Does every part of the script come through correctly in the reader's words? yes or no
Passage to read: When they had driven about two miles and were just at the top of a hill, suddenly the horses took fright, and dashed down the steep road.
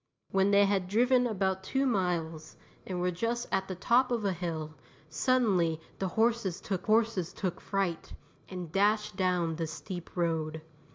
no